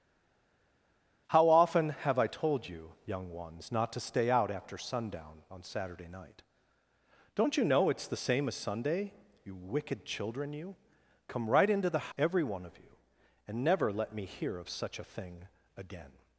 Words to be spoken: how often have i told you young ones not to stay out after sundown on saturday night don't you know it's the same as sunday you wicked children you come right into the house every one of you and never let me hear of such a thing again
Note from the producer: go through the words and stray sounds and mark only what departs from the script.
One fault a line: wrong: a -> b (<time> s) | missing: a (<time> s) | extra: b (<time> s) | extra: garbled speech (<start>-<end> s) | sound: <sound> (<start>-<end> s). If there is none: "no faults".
missing: house (12.1 s)